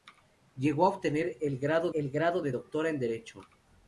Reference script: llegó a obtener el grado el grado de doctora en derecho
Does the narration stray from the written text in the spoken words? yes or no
no